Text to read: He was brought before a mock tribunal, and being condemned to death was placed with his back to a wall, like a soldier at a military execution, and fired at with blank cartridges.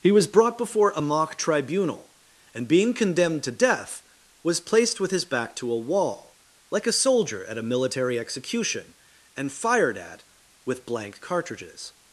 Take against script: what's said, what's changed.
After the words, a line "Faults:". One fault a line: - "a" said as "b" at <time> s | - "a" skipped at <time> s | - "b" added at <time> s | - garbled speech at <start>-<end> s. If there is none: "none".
He was brought before a mock tribunal, and being condemned to death was placed with his back to a wall, like a soldier at a military execution, and fired at with blank cartridges.
Faults:
none